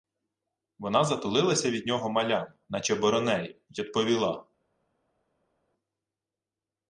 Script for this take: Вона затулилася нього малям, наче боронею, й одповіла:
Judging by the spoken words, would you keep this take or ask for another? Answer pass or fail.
fail